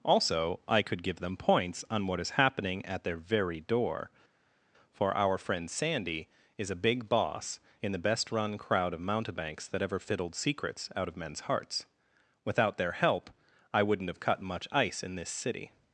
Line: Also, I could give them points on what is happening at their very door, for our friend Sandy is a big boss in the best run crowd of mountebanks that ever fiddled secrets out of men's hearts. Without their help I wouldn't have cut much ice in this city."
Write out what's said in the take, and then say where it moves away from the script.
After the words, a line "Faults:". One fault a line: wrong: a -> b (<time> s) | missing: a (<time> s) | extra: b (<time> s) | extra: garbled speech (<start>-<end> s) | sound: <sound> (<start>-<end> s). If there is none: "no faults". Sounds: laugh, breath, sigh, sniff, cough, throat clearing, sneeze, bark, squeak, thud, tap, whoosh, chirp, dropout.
Also, I could give them points on what is happening at their very door, for our friend Sandy is a big boss in the best run crowd of mountebanks that ever fiddled secrets out of men's hearts. Without their help I wouldn't have cut much ice in this city."
Faults:
no faults